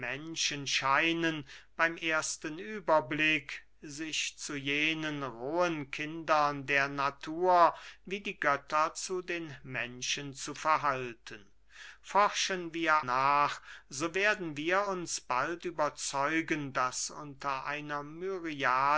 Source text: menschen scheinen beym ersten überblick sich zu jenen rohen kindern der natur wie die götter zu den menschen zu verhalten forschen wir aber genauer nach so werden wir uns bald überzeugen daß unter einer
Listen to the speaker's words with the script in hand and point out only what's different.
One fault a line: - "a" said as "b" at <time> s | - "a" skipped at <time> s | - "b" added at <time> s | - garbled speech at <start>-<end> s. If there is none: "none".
- "aber genauer" skipped at 12.9 s